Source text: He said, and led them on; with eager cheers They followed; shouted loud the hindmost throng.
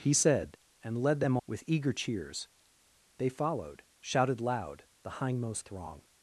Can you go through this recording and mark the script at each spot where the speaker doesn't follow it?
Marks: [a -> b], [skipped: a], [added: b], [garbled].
He said, and led them [skipped: on;] with eager cheers They followed; shouted loud the hindmost throng.